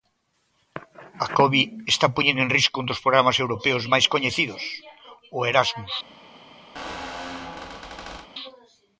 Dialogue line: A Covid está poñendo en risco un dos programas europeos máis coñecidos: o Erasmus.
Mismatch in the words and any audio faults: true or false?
true